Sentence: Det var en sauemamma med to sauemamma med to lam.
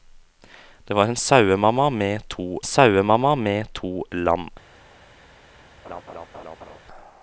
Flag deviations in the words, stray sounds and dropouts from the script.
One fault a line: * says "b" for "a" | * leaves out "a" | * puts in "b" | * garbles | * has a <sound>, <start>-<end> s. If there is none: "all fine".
* has a laugh, 5.8-6.8 s